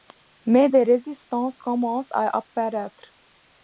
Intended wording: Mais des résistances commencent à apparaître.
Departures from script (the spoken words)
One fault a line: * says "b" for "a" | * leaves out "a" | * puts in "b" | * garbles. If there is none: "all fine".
all fine